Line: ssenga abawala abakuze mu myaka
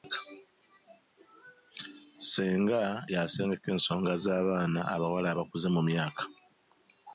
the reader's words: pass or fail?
fail